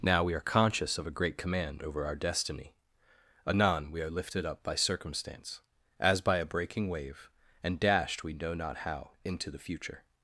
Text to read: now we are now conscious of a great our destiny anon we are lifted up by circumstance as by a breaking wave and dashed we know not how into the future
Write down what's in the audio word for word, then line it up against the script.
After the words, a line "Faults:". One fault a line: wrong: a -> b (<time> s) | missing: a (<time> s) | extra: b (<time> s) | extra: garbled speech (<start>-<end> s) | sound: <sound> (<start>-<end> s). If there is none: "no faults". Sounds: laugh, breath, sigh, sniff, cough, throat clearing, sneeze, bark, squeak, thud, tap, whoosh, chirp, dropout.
now we are conscious of a great command over our destiny anon we are lifted up by circumstance as by a breaking wave and dashed we know not how into the future
Faults:
missing: now (0.4 s)
extra: command over (1.4 s)